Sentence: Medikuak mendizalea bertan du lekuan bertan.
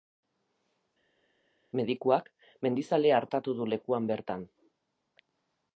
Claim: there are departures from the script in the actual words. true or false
true